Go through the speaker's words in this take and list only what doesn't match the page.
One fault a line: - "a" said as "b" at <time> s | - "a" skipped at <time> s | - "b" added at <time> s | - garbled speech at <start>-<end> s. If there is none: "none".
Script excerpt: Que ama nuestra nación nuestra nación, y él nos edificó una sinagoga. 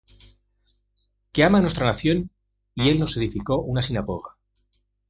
- "nuestra nación" skipped at 2.3 s